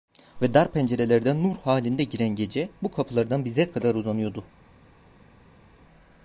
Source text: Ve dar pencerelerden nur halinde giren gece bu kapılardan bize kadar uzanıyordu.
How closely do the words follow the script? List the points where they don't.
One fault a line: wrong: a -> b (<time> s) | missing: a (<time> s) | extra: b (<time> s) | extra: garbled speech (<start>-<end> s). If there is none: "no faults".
no faults